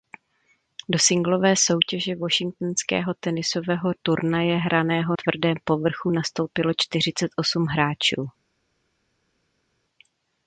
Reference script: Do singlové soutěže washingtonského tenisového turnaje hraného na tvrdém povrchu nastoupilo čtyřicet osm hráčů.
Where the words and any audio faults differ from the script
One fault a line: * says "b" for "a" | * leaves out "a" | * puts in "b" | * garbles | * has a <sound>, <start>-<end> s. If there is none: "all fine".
* leaves out "na"